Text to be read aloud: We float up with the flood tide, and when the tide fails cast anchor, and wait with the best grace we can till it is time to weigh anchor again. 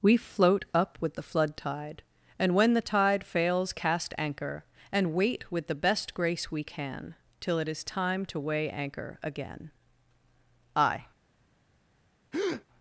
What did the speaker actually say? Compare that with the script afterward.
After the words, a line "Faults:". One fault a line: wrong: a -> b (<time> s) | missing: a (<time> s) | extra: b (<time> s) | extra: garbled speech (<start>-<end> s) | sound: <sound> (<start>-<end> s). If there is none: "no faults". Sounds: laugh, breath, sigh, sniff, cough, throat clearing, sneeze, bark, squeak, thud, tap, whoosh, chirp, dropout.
We float up with the flood tide, and when the tide fails cast anchor, and wait with the best grace we can till it is time to weigh anchor again. I
Faults:
extra: I (10.8 s)
sound: breath (12.3-12.6 s)